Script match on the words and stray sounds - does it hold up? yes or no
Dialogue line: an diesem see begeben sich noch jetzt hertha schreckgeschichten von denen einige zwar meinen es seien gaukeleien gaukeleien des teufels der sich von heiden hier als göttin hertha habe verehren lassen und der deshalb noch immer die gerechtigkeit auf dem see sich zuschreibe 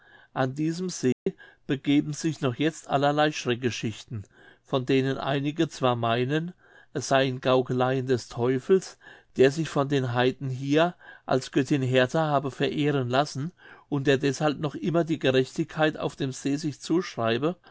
no